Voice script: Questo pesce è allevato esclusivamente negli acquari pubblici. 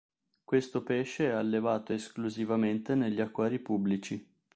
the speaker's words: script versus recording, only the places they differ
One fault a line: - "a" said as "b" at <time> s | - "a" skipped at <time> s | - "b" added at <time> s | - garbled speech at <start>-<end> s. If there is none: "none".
none